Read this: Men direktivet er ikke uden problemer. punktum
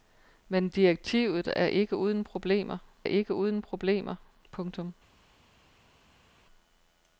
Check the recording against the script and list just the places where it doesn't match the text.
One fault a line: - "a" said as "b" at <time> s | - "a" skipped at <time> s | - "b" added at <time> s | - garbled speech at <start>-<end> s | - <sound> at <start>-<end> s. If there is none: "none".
- "ikke uden problemer" added at 3.0 s